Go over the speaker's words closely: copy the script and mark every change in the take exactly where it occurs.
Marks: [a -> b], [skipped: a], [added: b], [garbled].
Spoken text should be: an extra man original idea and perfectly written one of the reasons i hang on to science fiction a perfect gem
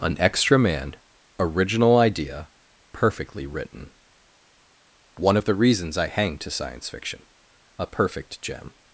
an extra man original idea [skipped: and] perfectly written one of the reasons i hang [skipped: on] to science fiction a perfect gem